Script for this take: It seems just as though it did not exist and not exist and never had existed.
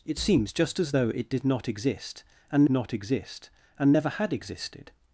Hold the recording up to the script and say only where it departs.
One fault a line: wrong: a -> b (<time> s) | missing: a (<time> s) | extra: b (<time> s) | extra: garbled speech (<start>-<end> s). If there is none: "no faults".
no faults